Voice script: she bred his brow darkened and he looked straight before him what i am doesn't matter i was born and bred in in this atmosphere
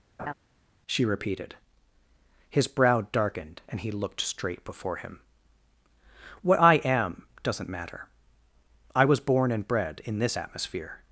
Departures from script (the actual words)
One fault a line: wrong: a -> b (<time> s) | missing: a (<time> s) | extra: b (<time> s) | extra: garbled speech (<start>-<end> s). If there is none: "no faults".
wrong: bred -> repeated (1.0 s)
missing: in (10.2 s)